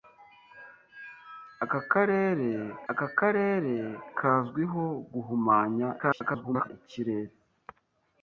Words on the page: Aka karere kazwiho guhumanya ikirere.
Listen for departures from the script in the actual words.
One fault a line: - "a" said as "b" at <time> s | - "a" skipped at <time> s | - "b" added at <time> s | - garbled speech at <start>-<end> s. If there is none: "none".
- "aka karere" added at 2.9 s
- garbled speech at 6.0-6.7 s